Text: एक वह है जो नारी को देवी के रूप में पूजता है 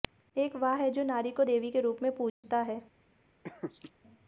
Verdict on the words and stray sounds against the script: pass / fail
fail